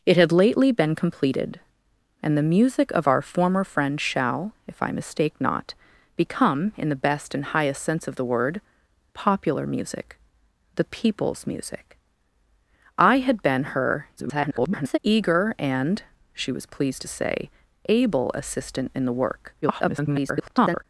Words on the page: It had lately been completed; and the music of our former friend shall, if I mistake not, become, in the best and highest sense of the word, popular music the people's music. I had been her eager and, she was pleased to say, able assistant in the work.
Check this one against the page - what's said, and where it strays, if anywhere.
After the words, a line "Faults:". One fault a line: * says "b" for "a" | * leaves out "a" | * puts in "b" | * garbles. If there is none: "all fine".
It had lately been completed; and the music of our former friend shall, if I mistake not, become, in the best and highest sense of the word, popular music the people's music. I had been her [garbled] eager and, she was pleased to say, able assistant in the work. [garbled]
Faults:
* garbles
* garbles